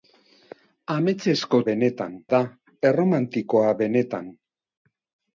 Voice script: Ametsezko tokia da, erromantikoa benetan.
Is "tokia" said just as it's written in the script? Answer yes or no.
no